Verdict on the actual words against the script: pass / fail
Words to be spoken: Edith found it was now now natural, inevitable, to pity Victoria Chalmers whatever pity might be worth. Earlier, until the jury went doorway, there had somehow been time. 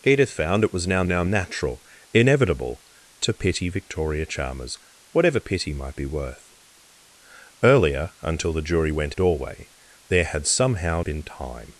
pass